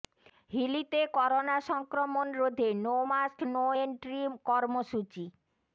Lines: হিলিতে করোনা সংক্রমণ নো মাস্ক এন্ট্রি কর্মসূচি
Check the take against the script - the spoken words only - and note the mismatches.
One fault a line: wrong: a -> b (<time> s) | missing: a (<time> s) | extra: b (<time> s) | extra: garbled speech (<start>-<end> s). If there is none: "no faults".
extra: রোধে (2.3 s)
extra: নো (3.5 s)